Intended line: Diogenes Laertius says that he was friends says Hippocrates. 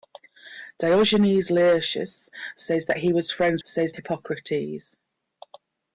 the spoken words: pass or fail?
pass